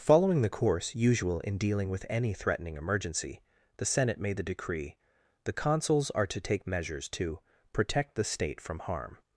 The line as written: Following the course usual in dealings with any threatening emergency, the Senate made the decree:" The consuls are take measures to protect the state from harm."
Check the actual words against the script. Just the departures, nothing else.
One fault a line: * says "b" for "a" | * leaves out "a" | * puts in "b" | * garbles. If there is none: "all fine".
* says "dealing" for "dealings"
* puts in "to"